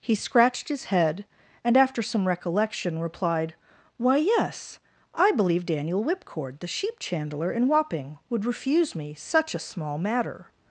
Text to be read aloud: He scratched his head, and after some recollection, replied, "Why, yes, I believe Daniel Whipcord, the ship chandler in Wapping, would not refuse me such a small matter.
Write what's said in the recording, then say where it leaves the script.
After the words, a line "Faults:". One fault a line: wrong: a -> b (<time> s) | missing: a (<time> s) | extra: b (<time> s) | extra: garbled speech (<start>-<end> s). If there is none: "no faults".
He scratched his head, and after some recollection, replied, "Why, yes, I believe Daniel Whipcord, the sheep chandler in Wapping, would refuse me such a small matter.
Faults:
wrong: ship -> sheep (6.7 s)
missing: not (8.4 s)